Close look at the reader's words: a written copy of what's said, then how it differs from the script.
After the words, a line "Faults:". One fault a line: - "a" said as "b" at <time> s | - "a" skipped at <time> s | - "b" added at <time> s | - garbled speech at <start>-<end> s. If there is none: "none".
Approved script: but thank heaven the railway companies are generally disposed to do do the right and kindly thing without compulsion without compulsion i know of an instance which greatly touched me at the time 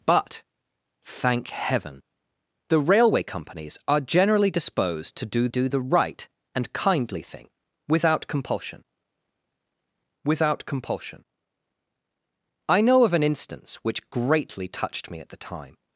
but thank heaven the railway companies are generally disposed to do do the right and kindly thing without compulsion without compulsion i know of an instance which greatly touched me at the time
Faults:
none